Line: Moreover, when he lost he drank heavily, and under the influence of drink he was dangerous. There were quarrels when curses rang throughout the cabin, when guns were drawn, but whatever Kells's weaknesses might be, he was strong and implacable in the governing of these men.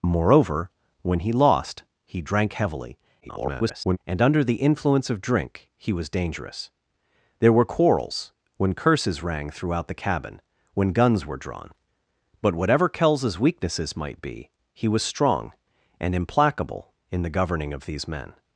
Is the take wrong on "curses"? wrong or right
right